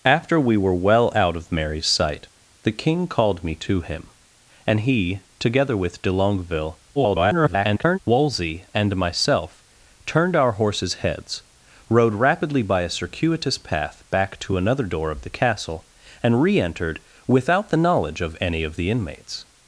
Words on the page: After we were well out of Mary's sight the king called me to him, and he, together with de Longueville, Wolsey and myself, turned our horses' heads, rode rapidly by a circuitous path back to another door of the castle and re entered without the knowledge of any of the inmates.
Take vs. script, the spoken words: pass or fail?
fail